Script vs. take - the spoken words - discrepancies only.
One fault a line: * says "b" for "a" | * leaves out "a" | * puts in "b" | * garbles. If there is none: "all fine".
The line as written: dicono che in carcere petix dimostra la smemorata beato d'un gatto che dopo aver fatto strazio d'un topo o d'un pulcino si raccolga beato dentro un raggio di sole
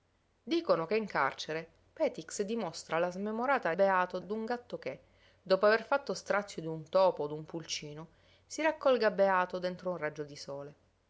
all fine